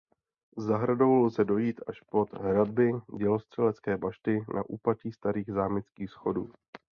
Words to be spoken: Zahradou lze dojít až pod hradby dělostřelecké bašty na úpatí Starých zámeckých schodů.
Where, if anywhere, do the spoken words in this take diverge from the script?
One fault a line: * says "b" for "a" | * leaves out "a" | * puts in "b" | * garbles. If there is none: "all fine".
all fine